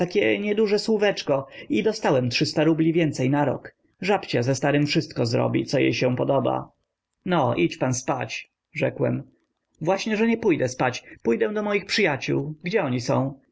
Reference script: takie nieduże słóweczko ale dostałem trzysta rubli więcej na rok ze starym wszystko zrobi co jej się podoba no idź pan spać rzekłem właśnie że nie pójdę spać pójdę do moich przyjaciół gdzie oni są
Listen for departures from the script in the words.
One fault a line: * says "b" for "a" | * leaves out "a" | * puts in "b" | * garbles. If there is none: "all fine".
* says "i" for "ale"
* puts in "żabcia"